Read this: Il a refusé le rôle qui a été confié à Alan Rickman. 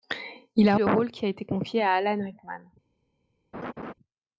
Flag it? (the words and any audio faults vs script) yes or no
yes